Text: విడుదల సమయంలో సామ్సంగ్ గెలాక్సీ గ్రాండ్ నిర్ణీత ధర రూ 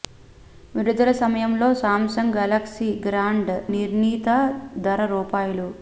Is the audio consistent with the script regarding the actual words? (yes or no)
yes